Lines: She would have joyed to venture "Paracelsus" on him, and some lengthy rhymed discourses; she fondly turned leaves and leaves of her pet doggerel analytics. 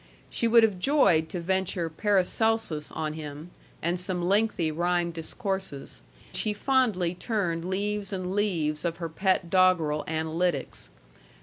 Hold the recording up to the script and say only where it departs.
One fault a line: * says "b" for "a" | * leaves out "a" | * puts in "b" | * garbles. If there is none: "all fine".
all fine